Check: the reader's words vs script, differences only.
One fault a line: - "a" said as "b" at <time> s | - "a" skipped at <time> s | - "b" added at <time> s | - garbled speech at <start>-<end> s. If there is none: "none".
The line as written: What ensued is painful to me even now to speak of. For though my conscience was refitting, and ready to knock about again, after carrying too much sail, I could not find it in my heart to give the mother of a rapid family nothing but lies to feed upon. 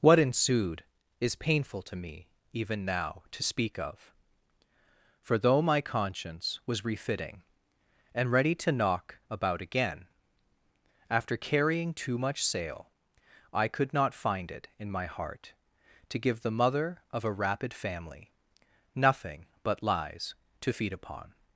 none